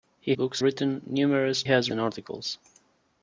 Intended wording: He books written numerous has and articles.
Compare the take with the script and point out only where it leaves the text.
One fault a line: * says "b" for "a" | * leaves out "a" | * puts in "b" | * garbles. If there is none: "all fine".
all fine